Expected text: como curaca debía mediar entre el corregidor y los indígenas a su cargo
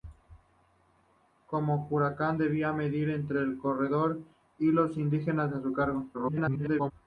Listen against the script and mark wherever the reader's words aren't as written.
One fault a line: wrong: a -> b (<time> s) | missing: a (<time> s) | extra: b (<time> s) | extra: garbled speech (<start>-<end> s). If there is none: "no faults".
extra: garbled speech (6.1-6.9 s)